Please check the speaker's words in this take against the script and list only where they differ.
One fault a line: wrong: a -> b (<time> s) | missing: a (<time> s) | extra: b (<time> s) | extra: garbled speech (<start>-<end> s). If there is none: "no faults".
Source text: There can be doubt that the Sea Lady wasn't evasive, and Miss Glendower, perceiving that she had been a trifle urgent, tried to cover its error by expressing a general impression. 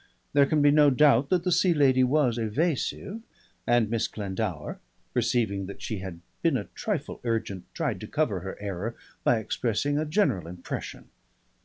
extra: no (0.7 s)
wrong: wasn't -> was (2.0 s)
wrong: its -> her (8.4 s)